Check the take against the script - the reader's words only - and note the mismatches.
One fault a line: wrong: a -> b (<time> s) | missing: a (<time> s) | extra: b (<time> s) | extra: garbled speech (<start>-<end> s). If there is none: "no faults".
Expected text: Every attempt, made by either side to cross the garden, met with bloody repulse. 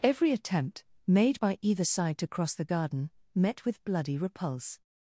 no faults